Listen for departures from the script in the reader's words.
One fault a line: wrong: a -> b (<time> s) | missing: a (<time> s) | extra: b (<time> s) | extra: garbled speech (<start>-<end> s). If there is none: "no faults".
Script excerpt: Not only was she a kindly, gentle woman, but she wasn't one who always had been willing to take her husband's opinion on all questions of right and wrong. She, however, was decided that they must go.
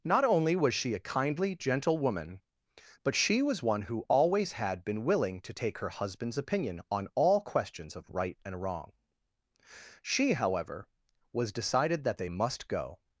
wrong: wasn't -> was (3.4 s)